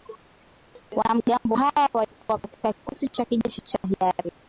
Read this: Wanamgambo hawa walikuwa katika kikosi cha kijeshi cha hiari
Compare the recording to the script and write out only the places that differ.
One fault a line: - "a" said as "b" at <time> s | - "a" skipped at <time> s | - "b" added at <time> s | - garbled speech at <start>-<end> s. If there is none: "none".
none